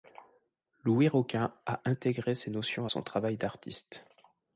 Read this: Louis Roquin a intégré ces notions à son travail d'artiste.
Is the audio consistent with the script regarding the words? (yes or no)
yes